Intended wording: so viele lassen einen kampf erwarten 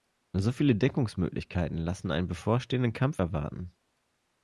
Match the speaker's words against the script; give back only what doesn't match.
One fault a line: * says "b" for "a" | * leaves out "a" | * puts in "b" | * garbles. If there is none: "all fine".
* puts in "deckungsmöglichkeiten"
* puts in "bevorstehenden"